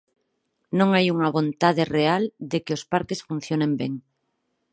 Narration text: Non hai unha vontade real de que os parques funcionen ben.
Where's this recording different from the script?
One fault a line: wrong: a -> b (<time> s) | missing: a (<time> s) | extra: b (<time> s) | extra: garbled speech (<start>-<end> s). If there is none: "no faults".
no faults